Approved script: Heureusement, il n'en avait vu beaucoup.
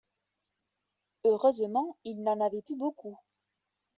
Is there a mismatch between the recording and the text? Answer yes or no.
no